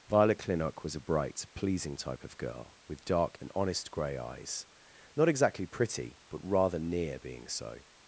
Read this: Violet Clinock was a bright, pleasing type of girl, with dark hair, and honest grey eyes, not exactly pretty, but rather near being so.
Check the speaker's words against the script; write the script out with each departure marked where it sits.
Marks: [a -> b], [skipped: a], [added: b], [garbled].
Violet Clinock was a bright, pleasing type of girl, with dark [skipped: hair,] and honest grey eyes, not exactly pretty, but rather near being so.